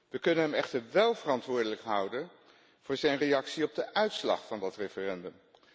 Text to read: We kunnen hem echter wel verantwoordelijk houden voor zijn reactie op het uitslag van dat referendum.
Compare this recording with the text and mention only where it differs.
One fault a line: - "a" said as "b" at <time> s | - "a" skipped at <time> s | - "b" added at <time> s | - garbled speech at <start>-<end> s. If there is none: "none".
- "het" said as "de" at 3.7 s